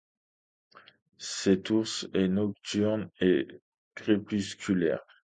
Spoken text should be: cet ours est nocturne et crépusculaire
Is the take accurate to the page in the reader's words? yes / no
yes